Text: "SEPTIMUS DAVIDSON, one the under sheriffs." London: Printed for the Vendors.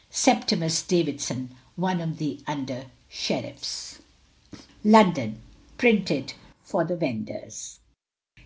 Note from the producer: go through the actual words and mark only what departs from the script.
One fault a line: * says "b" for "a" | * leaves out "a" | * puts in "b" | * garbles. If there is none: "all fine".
* puts in "of"